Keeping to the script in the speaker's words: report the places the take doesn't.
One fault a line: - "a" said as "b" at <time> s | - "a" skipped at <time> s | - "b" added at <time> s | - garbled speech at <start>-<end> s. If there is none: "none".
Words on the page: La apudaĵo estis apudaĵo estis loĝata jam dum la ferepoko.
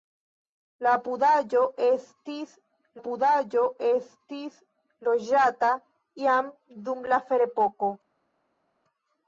none